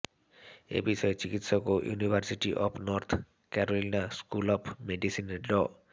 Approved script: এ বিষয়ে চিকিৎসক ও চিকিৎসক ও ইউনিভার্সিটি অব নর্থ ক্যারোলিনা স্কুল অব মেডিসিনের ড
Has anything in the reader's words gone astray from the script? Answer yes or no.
yes